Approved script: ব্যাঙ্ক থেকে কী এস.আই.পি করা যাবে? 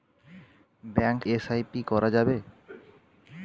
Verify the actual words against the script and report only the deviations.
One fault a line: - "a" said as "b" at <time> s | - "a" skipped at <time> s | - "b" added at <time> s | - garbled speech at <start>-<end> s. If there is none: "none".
- "থেকে কী" skipped at 1.2 s